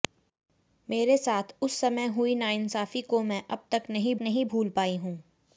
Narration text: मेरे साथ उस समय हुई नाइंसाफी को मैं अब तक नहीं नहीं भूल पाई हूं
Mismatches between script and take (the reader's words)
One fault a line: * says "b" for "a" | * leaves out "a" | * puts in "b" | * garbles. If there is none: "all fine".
all fine